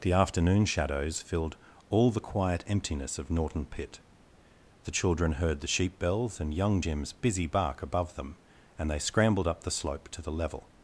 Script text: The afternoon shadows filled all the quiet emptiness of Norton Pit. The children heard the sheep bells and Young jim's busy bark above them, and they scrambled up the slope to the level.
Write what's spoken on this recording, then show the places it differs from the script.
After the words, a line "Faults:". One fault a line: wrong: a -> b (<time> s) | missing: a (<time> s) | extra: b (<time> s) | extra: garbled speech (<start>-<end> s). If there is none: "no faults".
The afternoon shadows filled all the quiet emptiness of Norton Pit. The children heard the sheep bells and Young jim's busy bark above them, and they scrambled up the slope to the level.
Faults:
no faults